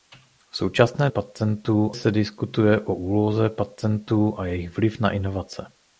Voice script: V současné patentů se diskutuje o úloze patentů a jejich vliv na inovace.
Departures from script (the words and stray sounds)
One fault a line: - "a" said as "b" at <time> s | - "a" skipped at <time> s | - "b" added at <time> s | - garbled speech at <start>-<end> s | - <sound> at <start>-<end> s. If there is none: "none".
none